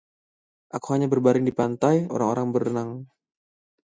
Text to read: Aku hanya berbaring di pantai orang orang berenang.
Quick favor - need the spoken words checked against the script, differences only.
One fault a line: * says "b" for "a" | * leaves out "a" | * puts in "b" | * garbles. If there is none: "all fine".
all fine